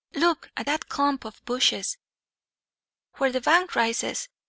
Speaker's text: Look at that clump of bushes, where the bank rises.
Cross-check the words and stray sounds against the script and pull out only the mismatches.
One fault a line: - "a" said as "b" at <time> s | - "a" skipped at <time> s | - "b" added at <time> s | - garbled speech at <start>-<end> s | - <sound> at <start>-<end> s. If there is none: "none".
none